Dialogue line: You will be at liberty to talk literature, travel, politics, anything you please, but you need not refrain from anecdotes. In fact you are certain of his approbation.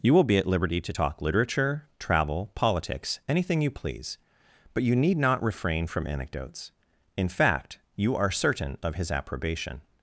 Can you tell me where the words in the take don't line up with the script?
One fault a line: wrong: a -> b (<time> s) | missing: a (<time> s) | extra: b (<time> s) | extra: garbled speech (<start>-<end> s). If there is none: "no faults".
no faults